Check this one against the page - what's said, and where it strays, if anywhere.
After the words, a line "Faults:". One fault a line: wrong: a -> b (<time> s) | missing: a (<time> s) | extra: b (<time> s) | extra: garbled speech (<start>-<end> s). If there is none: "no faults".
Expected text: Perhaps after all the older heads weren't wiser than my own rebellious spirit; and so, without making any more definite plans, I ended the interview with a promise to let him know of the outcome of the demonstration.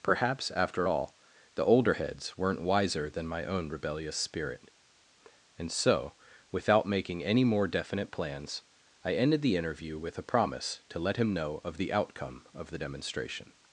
Perhaps after all the older heads weren't wiser than my own rebellious spirit; and so, without making any more definite plans, I ended the interview with a promise to let him know of the outcome of the demonstration.
Faults:
no faults